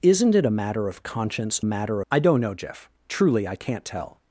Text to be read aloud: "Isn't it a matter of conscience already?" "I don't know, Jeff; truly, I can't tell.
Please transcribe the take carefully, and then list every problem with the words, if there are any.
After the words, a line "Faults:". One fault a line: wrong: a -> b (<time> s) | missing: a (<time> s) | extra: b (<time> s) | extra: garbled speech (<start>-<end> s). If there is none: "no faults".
"Isn't it a matter of conscience matter?" "I don't know, Jeff; truly, I can't tell.
Faults:
wrong: already -> matter (1.6 s)